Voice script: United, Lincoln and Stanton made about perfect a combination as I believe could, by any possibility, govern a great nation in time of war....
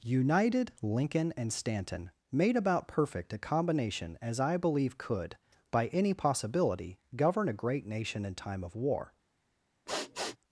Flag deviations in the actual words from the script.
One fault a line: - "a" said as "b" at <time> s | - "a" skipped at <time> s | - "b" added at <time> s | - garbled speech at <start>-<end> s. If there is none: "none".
none